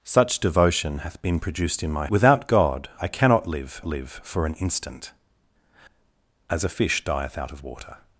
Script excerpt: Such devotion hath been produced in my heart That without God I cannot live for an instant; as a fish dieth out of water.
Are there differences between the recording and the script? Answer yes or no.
yes